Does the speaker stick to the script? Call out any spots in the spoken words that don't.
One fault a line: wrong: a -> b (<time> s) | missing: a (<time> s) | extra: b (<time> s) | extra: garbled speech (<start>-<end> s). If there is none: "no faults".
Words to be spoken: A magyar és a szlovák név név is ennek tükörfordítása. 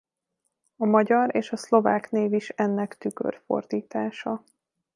missing: név (2.3 s)